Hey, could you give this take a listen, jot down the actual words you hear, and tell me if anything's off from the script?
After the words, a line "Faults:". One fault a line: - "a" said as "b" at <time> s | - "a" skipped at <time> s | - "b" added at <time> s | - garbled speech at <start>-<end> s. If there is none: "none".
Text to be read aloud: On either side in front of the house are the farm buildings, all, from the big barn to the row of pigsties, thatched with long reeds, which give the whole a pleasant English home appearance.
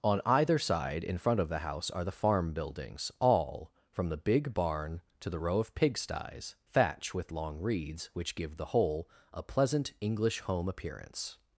On either side in front of the house are the farm buildings, all, from the big barn to the row of pigsties, thatch with long reeds, which give the whole a pleasant English home appearance.
Faults:
- "thatched" said as "thatch" at 6.7 s